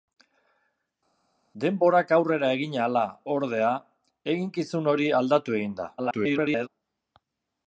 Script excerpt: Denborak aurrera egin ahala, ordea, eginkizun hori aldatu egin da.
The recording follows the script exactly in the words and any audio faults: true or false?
false